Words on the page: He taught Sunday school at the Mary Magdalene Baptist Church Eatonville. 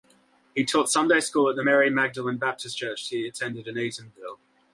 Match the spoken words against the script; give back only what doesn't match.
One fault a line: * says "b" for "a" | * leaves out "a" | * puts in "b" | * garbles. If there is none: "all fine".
* puts in "he attended in"